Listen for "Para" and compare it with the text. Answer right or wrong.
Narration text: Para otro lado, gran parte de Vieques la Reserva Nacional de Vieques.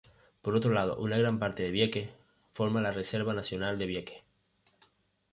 wrong